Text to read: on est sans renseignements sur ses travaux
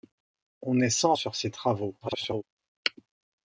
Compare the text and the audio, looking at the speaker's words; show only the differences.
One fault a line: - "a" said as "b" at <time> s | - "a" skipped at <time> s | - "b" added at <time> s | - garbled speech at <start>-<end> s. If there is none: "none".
- "renseignements" skipped at 1.1 s
- garbled speech at 2.0-2.4 s